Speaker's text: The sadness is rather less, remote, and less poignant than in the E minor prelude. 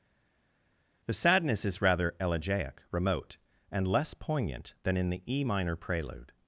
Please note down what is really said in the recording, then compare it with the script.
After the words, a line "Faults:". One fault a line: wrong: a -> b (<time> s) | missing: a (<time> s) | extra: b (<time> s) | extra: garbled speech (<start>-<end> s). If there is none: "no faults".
The sadness is rather elegiac, remote, and less poignant than in the E minor prelude.
Faults:
wrong: less -> elegiac (2.2 s)